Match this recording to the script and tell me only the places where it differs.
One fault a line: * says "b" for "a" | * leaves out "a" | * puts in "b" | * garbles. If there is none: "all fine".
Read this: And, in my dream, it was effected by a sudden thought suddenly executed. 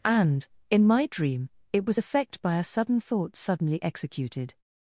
* says "effect" for "effected"